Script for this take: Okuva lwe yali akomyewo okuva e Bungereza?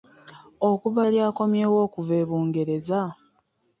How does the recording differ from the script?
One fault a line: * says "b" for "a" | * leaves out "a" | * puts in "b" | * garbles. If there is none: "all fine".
* leaves out "lwe"